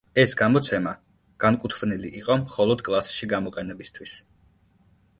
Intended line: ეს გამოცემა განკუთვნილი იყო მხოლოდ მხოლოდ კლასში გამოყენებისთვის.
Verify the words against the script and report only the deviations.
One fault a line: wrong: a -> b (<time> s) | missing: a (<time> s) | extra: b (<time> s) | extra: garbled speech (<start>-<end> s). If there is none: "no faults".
missing: მხოლოდ (2.9 s)